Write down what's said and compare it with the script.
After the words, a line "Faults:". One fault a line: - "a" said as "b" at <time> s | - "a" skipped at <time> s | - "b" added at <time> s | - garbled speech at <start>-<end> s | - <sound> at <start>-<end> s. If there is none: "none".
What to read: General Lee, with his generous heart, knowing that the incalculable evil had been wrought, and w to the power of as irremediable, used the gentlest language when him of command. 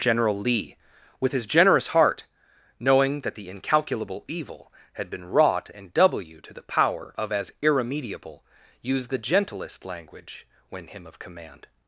General Lee, with his generous heart, knowing that the incalculable evil had been wrought, and w to the power of as irremediable, used the gentlest language when him of command.
Faults:
none